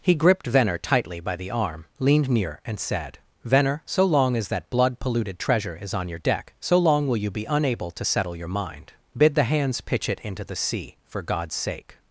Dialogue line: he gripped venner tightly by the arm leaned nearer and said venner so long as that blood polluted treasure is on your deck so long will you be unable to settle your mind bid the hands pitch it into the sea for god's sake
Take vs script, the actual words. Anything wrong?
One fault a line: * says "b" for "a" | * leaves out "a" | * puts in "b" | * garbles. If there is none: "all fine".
* says "near" for "nearer"